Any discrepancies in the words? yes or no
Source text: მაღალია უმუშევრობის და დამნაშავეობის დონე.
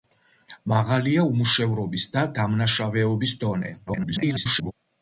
yes